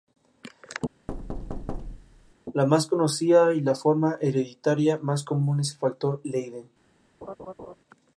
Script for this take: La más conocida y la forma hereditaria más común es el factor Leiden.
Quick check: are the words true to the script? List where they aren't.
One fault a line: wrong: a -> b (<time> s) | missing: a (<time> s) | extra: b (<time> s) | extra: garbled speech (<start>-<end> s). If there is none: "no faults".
no faults